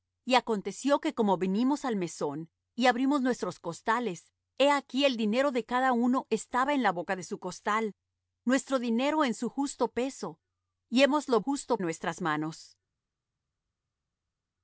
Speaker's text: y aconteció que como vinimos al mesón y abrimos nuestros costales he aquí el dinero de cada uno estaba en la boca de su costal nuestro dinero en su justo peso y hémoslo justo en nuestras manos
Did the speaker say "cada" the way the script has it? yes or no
yes